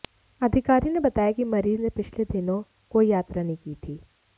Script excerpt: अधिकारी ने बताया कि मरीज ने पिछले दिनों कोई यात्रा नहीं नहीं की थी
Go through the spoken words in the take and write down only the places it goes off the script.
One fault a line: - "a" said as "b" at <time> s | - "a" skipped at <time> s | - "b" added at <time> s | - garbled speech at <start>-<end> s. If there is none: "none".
- "नहीं" skipped at 3.6 s